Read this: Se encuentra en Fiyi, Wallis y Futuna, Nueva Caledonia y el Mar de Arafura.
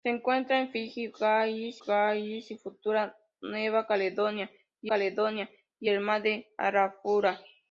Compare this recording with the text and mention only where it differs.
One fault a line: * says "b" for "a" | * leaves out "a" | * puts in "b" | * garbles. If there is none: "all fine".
* puts in "Wallis"
* puts in "Caledonia y"